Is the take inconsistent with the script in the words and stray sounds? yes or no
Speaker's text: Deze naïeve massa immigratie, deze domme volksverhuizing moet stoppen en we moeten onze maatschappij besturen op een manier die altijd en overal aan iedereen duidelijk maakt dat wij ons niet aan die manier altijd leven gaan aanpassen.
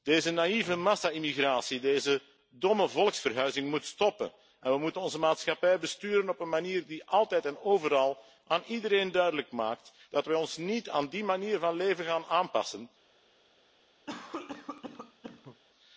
yes